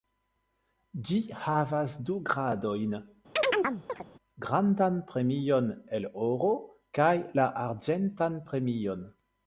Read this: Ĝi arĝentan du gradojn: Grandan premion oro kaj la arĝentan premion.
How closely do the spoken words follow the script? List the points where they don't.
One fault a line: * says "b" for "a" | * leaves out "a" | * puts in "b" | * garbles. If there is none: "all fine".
* says "havas" for "arĝentan"
* puts in "el"